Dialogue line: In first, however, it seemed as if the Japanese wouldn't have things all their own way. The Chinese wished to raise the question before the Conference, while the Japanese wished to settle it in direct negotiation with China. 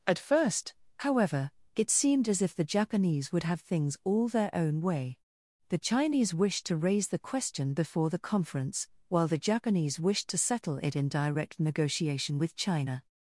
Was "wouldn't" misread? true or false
true